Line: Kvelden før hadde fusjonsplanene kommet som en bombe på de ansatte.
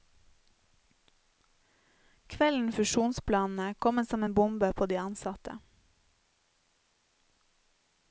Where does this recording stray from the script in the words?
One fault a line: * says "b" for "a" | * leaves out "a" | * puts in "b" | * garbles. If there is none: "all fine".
* leaves out "før hadde"